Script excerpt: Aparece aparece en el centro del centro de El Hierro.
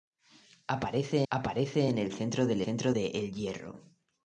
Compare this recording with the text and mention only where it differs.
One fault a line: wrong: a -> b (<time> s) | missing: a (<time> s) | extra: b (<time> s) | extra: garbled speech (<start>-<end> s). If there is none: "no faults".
no faults